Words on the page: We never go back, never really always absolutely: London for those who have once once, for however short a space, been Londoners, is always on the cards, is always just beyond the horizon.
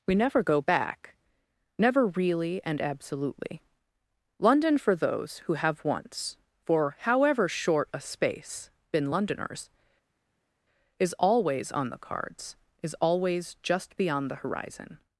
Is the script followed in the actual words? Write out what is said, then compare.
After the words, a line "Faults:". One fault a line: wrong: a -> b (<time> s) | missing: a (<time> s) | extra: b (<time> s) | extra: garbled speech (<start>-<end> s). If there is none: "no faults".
We never go back, never really and absolutely: London for those who have once, for however short a space, been Londoners, is always on the cards, is always just beyond the horizon.
Faults:
wrong: always -> and (2.6 s)
missing: once (6.4 s)